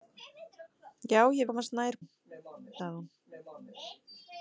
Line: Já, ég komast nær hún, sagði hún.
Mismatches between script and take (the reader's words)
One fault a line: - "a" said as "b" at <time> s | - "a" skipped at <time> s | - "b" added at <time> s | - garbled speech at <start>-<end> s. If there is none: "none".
none